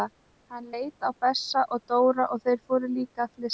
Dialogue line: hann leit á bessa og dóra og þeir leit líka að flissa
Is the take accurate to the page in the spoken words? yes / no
no